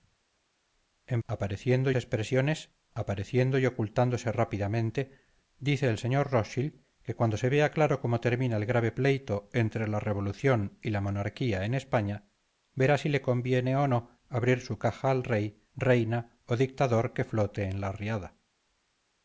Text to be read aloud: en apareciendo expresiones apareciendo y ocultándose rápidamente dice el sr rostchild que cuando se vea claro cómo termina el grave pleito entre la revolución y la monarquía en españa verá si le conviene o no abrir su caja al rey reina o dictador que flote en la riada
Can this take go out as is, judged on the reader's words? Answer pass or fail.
pass